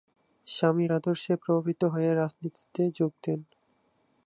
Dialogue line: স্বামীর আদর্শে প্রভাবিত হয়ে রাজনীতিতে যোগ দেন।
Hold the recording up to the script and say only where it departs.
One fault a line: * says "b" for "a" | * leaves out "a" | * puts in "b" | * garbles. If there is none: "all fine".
all fine